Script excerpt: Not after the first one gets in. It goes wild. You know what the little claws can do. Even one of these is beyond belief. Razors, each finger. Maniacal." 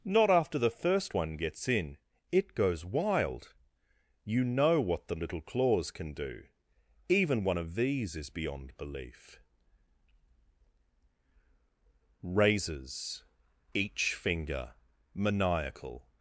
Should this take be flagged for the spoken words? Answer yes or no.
no